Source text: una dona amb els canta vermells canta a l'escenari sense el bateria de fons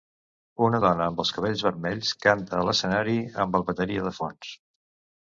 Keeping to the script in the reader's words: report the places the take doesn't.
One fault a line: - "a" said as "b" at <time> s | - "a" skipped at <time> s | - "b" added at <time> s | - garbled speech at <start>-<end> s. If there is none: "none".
- "canta" said as "cabells" at 1.4 s
- "sense" said as "amb" at 3.5 s